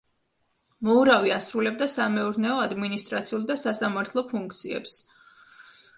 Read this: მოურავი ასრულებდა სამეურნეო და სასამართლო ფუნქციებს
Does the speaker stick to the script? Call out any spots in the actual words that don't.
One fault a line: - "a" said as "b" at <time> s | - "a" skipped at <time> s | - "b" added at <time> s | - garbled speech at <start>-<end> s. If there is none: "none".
- "ადმინისტრაციულ" added at 2.6 s